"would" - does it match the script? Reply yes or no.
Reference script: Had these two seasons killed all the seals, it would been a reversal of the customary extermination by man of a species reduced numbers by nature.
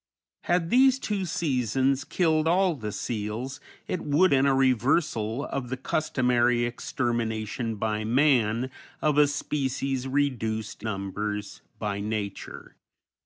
yes